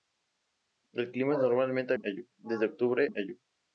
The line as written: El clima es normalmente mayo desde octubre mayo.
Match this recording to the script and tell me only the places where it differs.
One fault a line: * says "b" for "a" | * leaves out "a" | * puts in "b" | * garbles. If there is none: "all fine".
all fine